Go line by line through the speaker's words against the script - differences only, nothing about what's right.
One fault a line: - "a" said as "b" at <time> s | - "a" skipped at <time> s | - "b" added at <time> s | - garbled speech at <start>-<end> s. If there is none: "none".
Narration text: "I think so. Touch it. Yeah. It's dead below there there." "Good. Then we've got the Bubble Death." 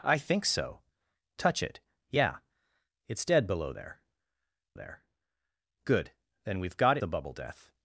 none